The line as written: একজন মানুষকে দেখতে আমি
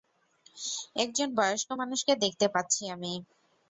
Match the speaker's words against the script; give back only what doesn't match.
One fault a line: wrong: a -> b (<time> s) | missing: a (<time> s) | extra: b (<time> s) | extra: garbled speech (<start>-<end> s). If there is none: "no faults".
extra: বয়স্ক (1.4 s)
extra: পাচ্ছি (2.5 s)